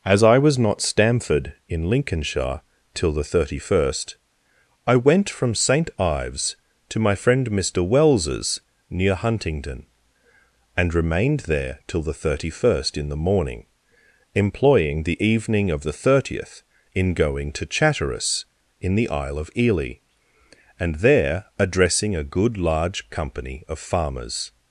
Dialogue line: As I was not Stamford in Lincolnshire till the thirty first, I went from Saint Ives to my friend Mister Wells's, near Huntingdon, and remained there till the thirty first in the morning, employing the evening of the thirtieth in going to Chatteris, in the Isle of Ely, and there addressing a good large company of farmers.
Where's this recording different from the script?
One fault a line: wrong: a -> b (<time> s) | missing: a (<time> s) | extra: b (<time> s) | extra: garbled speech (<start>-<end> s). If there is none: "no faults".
no faults